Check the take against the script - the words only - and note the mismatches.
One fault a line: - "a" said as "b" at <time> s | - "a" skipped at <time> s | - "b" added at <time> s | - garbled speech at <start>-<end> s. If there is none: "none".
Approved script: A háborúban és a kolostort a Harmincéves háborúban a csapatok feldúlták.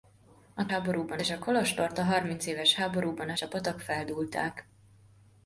none